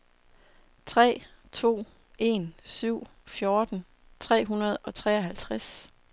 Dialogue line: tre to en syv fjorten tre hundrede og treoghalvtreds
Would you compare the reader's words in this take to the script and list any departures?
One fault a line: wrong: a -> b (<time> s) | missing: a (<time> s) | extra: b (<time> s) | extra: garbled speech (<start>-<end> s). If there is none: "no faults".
no faults